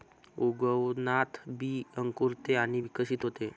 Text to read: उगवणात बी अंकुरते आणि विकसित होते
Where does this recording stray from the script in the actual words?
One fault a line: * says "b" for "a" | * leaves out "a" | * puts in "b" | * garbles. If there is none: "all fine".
all fine